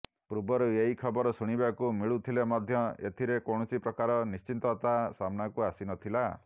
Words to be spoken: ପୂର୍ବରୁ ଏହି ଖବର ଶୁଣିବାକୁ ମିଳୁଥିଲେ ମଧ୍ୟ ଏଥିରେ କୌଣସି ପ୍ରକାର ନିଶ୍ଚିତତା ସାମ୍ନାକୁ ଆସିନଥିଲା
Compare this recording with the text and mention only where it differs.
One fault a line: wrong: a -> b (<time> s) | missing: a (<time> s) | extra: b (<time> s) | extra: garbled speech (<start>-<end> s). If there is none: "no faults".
no faults